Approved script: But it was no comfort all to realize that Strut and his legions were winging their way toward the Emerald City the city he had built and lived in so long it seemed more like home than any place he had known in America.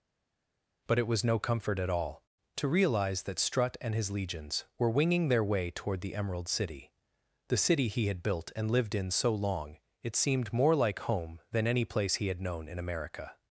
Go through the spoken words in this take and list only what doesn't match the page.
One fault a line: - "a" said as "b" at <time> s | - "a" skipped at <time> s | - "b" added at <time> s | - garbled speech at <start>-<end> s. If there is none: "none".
- "at" added at 1.8 s